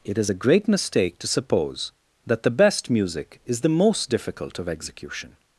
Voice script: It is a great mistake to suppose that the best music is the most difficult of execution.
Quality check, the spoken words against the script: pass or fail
pass